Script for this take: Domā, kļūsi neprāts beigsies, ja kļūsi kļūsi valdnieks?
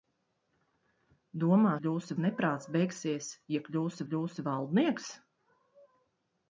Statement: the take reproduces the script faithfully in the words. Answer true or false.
true